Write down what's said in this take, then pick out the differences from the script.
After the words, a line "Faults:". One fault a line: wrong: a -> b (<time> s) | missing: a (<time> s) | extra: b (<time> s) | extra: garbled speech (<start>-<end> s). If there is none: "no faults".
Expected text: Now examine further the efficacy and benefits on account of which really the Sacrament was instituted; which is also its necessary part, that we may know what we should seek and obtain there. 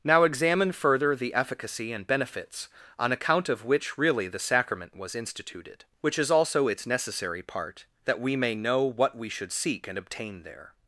Now examine further the efficacy and benefits on account of which really the Sacrament was instituted; which is also its necessary part, that we may know what we should seek and obtain there.
Faults:
no faults